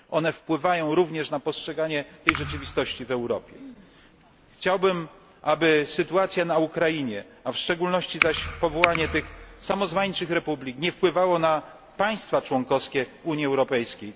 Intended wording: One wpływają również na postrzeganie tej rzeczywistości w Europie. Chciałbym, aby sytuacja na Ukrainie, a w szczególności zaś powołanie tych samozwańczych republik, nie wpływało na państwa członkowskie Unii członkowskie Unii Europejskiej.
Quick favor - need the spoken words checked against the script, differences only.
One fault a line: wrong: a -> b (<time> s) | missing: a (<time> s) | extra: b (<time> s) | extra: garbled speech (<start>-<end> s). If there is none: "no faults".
missing: członkowskie Unii (13.5 s)